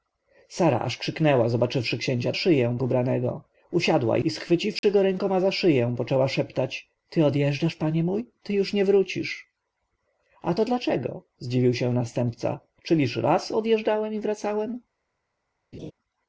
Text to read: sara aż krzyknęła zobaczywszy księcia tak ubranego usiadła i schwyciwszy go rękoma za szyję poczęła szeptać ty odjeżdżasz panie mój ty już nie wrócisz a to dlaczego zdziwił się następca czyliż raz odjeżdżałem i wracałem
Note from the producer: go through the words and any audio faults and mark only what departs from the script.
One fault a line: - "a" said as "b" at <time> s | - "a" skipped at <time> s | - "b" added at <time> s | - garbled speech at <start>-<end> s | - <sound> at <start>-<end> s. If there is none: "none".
- "tak" said as "szyję" at 2.3 s
- dropout at 4.8-4.8 s
- laugh at 15.7-15.9 s